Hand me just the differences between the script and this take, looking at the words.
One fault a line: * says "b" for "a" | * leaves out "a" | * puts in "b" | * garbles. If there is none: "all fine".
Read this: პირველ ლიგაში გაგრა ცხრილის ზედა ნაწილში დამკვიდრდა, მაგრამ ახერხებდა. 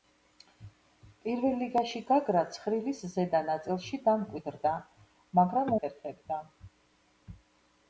all fine